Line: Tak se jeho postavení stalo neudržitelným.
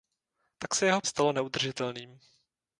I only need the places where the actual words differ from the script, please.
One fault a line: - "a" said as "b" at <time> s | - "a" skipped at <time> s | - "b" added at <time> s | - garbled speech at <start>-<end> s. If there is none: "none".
- "postavení" skipped at 1.0 s